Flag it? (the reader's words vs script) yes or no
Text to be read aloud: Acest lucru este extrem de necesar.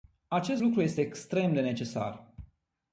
no